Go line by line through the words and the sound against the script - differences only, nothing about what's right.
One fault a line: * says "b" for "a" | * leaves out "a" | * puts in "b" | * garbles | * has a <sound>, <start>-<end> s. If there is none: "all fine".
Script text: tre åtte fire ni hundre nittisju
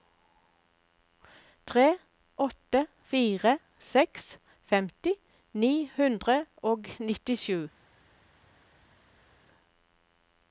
* puts in "seks femti"
* puts in "og"